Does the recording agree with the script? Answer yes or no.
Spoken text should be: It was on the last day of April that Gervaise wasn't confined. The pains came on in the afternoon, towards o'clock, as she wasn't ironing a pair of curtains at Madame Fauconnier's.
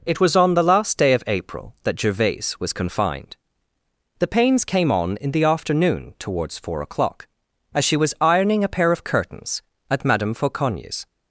no